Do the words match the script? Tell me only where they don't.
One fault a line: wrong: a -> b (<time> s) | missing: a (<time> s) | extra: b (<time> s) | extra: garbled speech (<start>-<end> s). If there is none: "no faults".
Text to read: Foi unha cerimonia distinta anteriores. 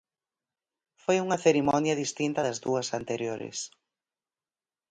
extra: das dúas (2.4 s)